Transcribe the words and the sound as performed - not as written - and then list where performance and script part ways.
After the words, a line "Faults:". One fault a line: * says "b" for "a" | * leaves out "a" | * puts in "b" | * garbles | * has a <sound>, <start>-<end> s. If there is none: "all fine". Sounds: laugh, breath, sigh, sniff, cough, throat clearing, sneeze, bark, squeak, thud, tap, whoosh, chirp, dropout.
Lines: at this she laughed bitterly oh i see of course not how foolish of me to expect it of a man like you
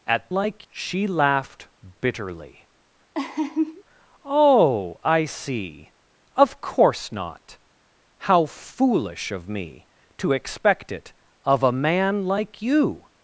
at like she laughed bitterly oh i see of course not how foolish of me to expect it of a man like you
Faults:
* says "like" for "this"
* has a laugh, 3.1-3.8 s